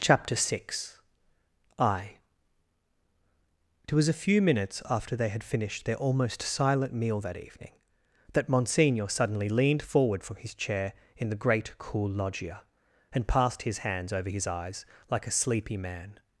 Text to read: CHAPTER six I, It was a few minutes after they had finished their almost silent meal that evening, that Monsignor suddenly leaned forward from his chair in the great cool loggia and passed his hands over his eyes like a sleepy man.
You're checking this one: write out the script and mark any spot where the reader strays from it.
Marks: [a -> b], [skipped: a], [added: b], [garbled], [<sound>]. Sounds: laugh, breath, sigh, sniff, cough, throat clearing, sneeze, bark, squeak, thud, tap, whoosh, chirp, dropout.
CHAPTER six I, It was a few minutes after they had finished their almost silent meal that evening, that Monsignor suddenly leaned forward from his chair in the great cool loggia and passed his hands over his eyes like a sleepy man.